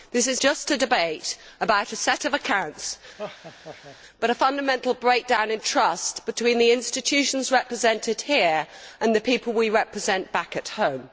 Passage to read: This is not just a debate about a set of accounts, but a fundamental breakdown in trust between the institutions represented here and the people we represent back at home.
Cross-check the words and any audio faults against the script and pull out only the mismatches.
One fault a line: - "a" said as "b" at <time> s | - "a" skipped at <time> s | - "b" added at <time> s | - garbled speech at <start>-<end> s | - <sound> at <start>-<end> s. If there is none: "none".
- "not" skipped at 0.4 s
- laugh at 3.2-4.0 s